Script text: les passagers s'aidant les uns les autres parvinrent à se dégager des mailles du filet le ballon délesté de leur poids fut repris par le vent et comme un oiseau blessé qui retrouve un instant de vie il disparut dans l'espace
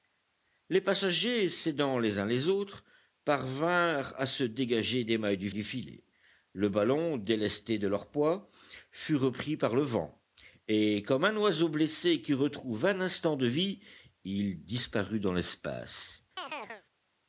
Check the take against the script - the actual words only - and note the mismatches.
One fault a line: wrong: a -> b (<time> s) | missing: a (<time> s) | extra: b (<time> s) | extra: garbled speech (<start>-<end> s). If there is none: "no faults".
extra: du (5.5 s)